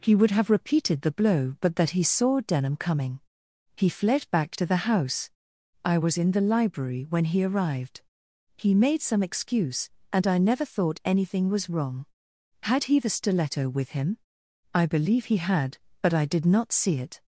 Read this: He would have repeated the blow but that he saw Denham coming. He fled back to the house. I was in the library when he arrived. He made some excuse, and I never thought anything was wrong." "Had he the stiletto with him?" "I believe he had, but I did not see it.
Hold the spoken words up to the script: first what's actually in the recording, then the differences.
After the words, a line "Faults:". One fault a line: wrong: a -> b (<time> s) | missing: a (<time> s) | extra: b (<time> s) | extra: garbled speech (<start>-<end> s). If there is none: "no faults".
He would have repeated the blow but that he saw Denham coming. He fled back to the house. I was in the library when he arrived. He made some excuse, and I never thought anything was wrong." "Had he the stiletto with him?" "I believe he had, but I did not see it.
Faults:
no faults